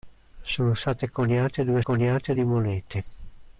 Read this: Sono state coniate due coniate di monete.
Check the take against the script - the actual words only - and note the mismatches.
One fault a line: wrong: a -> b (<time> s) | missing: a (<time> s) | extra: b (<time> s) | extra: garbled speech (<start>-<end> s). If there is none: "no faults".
no faults